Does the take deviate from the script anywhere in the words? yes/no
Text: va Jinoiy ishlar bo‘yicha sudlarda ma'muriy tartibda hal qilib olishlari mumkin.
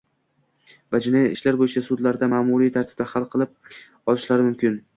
no